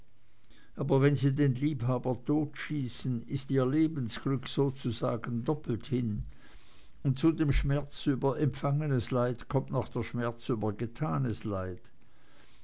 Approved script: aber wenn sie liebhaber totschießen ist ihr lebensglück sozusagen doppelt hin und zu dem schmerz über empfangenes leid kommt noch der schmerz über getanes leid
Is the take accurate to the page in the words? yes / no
no